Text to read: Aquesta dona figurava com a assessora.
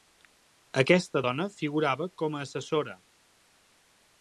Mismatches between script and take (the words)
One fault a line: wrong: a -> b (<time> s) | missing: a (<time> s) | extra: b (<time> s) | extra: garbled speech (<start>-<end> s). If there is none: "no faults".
no faults